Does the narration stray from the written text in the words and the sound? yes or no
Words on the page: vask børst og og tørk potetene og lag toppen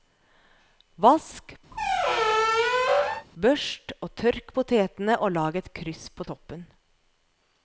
yes